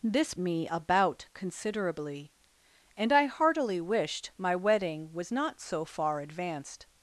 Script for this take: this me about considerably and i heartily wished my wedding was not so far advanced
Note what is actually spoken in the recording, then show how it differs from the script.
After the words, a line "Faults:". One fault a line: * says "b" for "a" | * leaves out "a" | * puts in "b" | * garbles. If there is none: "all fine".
this me about considerably and i heartily wished my wedding was not so far advanced
Faults:
all fine